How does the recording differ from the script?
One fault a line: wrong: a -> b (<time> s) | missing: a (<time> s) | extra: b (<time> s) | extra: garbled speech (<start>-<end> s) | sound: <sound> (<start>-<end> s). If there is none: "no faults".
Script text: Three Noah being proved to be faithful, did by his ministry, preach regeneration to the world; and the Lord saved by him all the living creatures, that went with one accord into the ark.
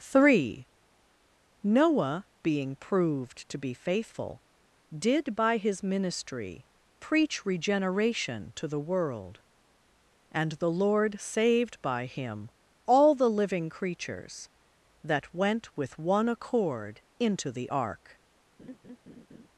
sound: laugh (18.6-19.5 s)